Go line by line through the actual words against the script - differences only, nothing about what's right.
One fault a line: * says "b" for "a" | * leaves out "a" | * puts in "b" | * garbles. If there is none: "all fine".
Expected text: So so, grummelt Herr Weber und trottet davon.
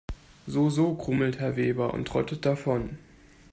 all fine